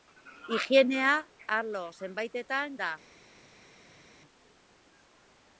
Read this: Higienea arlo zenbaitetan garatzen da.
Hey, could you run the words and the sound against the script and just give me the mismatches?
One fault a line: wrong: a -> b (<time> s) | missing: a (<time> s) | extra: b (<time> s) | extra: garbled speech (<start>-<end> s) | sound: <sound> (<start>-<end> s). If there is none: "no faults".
missing: garatzen (2.8 s)